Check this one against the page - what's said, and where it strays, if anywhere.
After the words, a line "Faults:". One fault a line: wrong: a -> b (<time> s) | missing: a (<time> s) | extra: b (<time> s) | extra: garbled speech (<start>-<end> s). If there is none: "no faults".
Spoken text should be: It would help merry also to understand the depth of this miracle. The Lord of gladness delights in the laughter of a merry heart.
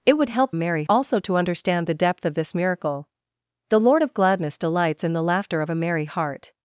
It would help merry also to understand the depth of this miracle. The Lord of gladness delights in the laughter of a merry heart.
Faults:
no faults